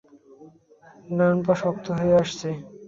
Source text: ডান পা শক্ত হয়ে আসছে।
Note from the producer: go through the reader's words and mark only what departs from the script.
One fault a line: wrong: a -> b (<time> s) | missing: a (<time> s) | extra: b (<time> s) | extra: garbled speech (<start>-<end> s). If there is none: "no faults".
no faults